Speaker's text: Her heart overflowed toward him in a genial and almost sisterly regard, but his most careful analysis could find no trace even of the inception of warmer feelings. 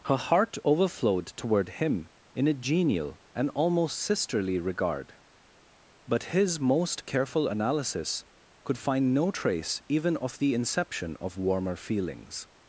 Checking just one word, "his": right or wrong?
right